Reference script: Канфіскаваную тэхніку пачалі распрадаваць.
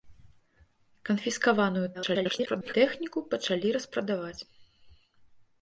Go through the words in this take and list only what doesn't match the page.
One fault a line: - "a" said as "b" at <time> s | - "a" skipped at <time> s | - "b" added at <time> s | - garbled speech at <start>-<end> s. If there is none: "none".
- garbled speech at 1.9-2.7 s